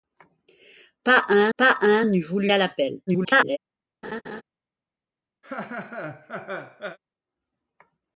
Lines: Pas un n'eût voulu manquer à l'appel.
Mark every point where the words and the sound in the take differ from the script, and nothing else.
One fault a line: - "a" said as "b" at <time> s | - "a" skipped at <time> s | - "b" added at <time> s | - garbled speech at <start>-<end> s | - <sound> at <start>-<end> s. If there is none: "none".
- "pas un" added at 1.6 s
- "manquer" skipped at 2.5 s
- garbled speech at 3.1-3.6 s
- laugh at 4.0-4.4 s
- laugh at 5.4-7.0 s